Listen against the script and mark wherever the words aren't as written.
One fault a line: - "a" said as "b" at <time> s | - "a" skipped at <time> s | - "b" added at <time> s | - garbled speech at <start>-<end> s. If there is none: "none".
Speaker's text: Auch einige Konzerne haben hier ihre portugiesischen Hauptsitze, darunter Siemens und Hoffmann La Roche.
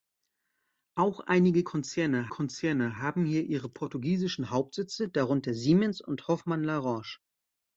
- "Konzerne" added at 2.3 s